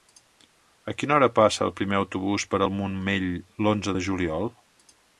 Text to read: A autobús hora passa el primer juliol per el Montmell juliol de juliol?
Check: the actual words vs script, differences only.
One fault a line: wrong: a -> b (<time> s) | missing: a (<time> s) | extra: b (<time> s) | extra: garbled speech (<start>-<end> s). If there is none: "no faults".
wrong: autobús -> quina (1.0 s)
wrong: juliol -> autobús (2.0 s)
wrong: juliol -> l'onze (3.7 s)